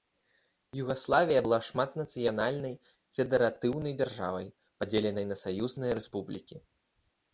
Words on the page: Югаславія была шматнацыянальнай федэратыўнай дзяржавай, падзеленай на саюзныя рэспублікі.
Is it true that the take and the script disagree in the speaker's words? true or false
false